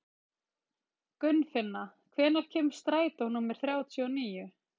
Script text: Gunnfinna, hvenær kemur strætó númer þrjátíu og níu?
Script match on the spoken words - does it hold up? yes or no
yes